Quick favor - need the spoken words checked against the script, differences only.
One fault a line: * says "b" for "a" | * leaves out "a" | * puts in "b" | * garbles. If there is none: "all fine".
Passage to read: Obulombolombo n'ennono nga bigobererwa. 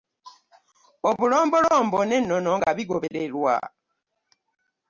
all fine